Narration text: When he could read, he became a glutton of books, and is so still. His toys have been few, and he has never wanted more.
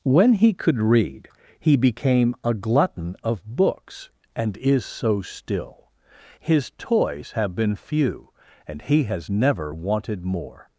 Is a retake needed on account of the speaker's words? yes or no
no